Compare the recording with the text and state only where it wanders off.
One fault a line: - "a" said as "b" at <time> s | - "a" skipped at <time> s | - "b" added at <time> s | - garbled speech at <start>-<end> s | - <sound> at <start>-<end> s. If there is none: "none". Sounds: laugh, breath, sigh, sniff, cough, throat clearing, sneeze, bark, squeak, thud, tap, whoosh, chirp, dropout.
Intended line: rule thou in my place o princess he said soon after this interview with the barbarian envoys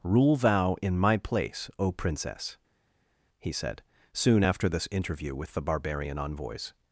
none